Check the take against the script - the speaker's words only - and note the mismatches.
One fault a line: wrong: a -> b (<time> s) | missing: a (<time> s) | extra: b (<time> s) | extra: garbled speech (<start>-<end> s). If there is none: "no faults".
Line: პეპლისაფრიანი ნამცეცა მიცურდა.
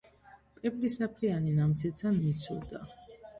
no faults